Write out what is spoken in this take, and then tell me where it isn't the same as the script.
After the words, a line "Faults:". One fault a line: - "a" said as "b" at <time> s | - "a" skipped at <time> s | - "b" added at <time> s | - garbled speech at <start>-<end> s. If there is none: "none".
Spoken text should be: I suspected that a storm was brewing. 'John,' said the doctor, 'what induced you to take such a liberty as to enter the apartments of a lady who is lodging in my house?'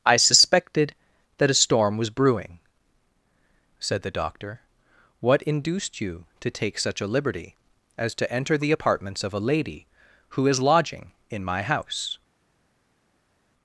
I suspected that a storm was brewing,' 'Said the doctor, 'what induced you to take such a liberty as to enter the apartments of a lady who is lodging in my house?'
Faults:
- "John" skipped at 2.6 s